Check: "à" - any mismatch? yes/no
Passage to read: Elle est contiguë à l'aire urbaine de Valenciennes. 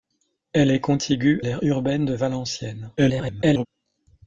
yes